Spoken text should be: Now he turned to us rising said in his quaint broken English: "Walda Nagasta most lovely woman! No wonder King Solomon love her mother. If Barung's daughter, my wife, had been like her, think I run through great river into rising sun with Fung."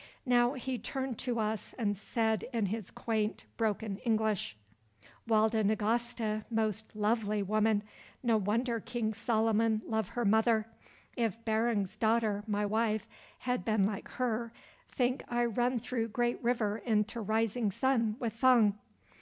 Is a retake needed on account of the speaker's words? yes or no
yes